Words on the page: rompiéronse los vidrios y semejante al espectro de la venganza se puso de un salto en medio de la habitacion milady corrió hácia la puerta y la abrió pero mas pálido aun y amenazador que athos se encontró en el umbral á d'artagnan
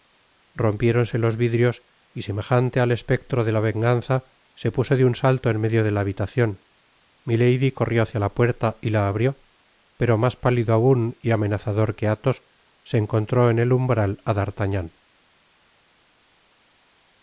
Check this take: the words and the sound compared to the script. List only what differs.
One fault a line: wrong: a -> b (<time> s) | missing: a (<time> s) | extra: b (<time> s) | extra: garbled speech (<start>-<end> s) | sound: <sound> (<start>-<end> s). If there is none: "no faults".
no faults